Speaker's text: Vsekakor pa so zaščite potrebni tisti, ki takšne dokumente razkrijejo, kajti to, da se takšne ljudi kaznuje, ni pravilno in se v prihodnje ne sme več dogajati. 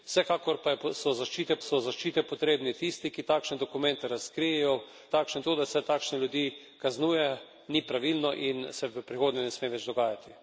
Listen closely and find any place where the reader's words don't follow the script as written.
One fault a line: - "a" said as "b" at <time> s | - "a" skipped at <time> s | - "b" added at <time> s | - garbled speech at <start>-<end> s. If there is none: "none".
- "so zaščite" added at 1.6 s
- "kajti" said as "takšne" at 5.1 s